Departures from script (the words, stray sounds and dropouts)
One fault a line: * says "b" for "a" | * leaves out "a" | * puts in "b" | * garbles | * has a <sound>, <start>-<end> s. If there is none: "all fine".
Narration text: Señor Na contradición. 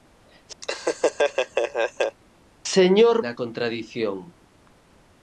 * has a laugh, 0.6-2.2 s